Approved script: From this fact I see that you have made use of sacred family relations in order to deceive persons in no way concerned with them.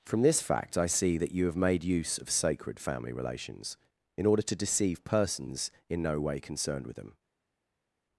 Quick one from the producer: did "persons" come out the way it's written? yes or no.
yes